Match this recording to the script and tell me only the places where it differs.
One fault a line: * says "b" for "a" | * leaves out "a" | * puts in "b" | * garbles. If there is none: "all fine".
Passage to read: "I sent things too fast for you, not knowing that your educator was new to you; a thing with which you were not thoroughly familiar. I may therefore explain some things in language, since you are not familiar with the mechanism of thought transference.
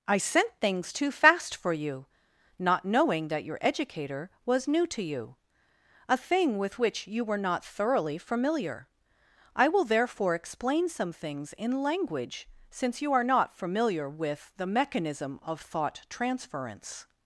* says "will" for "may"